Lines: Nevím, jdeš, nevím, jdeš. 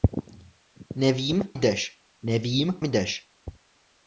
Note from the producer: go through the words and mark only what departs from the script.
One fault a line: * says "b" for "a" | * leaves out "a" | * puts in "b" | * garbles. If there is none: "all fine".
all fine